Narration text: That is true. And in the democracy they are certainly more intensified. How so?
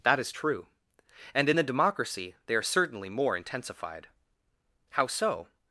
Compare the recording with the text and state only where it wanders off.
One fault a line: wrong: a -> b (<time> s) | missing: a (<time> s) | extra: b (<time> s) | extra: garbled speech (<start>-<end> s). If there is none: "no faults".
no faults